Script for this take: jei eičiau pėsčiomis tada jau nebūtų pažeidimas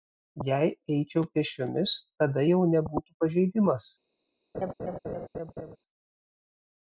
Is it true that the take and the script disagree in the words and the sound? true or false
true